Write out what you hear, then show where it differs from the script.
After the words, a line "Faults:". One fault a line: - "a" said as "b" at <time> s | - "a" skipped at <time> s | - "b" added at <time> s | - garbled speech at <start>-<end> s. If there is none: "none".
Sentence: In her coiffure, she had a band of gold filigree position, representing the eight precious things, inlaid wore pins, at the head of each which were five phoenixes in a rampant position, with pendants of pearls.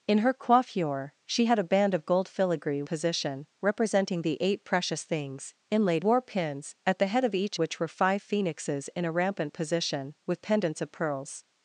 In her coiffure, she had a band of gold filigree position, representing the eight precious things, inlaid wore pins, at the head of each which were five phoenixes in a rampant position, with pendants of pearls.
Faults:
none